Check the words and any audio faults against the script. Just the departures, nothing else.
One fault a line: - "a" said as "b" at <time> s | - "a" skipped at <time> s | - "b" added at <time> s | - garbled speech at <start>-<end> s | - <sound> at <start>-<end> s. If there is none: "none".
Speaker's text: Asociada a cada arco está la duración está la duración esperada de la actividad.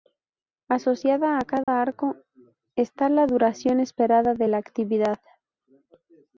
- dropout at 1.6-1.7 s
- "está la duración" skipped at 3.8 s